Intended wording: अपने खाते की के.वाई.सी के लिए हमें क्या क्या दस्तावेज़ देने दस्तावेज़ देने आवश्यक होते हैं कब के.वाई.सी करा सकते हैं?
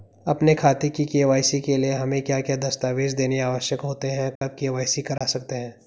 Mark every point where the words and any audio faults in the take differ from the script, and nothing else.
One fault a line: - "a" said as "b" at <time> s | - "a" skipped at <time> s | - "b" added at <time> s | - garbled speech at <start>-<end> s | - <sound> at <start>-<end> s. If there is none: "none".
- "दस्तावेज़ देने" skipped at 3.4 s
- dropout at 4.4-4.4 s
- dropout at 5.2-5.2 s